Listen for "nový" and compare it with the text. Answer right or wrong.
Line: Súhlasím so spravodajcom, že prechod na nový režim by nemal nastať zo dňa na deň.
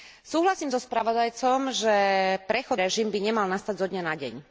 wrong